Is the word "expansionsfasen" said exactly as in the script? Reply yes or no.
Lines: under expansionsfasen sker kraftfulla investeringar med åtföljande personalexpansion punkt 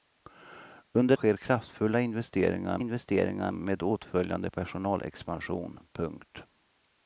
no